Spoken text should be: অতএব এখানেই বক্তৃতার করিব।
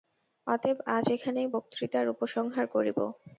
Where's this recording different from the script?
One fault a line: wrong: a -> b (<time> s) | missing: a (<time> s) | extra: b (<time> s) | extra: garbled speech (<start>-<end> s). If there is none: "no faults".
extra: আজ (0.9 s)
extra: উপসংহার (2.1 s)